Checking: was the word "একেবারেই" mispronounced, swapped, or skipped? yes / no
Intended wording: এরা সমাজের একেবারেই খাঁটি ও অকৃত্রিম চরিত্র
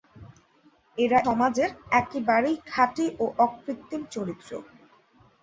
no